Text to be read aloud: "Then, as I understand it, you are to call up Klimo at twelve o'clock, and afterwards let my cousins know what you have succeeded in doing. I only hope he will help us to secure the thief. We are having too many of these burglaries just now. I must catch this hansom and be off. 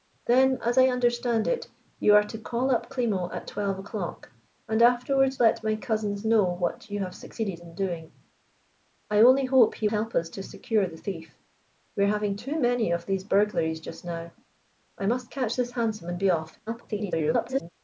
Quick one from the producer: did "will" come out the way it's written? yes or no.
no